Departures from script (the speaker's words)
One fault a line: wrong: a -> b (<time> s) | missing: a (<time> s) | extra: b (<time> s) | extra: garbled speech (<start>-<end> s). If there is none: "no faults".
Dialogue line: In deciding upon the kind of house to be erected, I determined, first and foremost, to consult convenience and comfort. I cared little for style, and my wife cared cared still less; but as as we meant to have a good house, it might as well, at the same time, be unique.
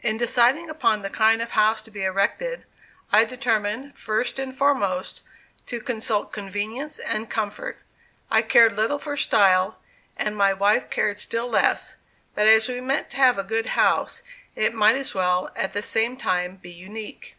missing: cared (11.2 s)
missing: as (12.7 s)